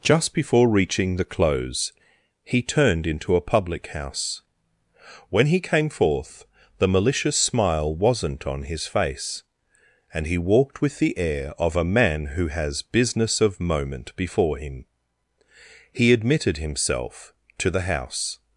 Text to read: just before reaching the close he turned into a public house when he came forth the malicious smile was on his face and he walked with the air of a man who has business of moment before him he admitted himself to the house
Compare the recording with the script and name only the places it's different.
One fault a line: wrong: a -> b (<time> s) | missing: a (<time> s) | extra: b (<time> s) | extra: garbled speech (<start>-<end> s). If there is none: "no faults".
wrong: was -> wasn't (8.0 s)